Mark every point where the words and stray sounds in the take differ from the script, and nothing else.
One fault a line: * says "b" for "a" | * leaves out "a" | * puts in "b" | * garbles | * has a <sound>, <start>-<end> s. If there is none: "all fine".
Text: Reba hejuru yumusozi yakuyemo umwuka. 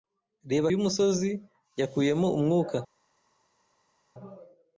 * leaves out "hejuru"